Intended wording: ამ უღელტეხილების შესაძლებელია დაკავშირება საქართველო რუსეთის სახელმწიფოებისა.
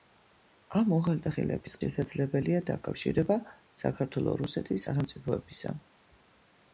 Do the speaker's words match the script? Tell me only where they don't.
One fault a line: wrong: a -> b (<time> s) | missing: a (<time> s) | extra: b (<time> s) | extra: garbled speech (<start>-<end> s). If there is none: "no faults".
no faults